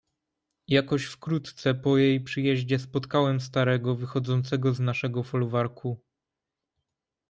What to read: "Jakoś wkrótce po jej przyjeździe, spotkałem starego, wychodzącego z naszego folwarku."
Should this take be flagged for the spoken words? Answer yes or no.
no